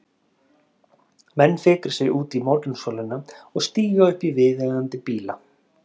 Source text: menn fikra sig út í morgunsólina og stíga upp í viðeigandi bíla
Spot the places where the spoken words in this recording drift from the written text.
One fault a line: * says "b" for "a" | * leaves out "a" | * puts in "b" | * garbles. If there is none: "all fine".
all fine